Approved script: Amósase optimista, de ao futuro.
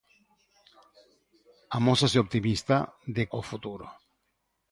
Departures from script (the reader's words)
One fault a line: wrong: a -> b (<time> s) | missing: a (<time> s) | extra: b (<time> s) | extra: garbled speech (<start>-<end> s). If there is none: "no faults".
no faults